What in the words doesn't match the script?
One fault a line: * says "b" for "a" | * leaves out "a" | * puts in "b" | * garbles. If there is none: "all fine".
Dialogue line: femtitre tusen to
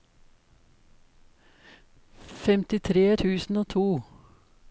* puts in "og"